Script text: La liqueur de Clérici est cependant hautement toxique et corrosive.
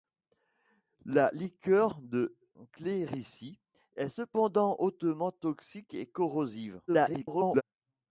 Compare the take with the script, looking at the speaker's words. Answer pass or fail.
fail